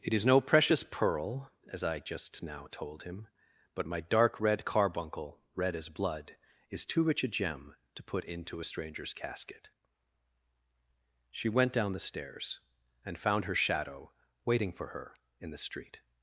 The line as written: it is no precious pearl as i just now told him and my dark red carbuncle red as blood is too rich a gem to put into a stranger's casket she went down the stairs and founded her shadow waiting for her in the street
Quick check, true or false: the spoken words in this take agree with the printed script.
false